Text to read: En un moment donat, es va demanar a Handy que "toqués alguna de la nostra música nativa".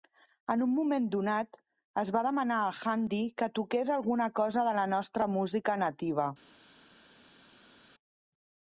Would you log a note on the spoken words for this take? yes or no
yes